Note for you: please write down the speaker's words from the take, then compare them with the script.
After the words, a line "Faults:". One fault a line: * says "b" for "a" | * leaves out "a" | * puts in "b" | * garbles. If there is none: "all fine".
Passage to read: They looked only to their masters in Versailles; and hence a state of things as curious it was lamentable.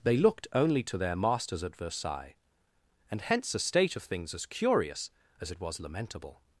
They looked only to their masters at Versailles; and hence a state of things as curious as it was lamentable.
Faults:
* says "at" for "in"
* puts in "as"